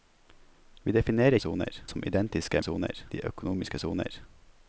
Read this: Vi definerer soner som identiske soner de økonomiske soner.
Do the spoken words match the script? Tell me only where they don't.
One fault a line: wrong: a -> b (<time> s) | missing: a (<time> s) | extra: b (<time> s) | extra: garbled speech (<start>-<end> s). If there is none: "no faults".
no faults